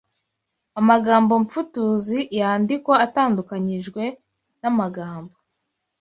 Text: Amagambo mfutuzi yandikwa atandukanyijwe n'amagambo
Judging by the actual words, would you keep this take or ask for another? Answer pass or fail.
pass